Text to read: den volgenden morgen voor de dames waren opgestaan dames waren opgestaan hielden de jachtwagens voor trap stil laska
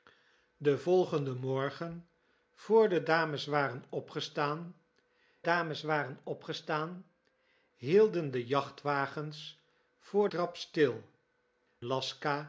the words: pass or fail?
pass